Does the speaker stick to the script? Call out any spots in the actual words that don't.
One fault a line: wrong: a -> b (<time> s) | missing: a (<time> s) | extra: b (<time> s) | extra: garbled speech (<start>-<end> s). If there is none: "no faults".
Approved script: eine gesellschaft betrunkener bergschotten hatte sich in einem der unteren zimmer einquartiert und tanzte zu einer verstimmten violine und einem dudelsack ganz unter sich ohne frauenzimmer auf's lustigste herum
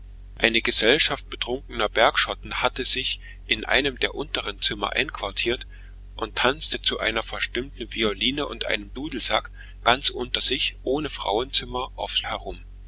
missing: lustigste (12.2 s)